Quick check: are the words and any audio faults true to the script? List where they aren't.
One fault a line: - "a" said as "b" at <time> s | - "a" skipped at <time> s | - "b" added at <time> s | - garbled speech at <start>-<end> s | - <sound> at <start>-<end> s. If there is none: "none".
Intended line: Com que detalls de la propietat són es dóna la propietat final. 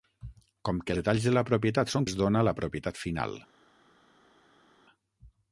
none